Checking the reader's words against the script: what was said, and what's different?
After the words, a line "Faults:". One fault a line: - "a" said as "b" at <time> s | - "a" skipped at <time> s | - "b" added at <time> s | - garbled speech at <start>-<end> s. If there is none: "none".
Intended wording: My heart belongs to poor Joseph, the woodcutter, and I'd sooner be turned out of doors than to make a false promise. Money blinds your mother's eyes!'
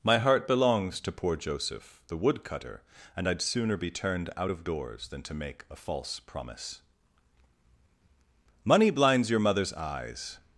My heart belongs to poor Joseph, the woodcutter, and I'd sooner be turned out of doors than to make a false promise. Money blinds your mother's eyes!'
Faults:
none